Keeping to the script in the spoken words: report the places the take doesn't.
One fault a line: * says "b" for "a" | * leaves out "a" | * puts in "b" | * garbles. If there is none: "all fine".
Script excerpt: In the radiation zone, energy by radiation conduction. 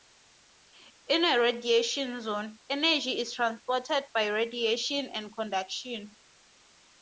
* says "a" for "the"
* puts in "is transported"
* puts in "and"